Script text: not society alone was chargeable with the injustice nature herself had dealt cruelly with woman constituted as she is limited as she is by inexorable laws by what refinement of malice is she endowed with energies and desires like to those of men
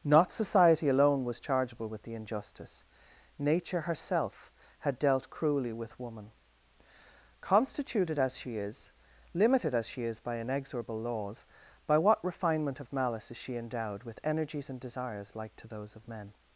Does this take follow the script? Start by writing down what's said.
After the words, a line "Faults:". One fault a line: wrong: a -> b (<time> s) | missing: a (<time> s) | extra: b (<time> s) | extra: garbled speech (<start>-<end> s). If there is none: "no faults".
not society alone was chargeable with the injustice nature herself had dealt cruelly with woman constituted as she is limited as she is by inexorable laws by what refinement of malice is she endowed with energies and desires like to those of men
Faults:
no faults